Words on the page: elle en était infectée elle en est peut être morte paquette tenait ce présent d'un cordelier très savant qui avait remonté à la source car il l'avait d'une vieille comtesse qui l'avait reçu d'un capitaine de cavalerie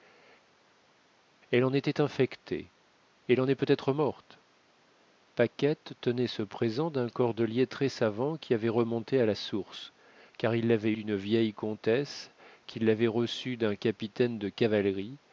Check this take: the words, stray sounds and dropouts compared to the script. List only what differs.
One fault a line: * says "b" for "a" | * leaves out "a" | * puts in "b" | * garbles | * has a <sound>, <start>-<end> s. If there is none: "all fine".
all fine